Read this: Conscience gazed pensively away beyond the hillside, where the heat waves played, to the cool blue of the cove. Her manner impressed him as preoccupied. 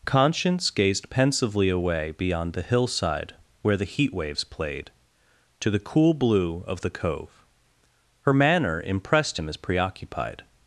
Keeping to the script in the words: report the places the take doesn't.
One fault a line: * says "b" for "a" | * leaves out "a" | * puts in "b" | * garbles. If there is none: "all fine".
all fine